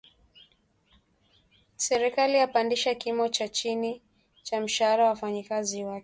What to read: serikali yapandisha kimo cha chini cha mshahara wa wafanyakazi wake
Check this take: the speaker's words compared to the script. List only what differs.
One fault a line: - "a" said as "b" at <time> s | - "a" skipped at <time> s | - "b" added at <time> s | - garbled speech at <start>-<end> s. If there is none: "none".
none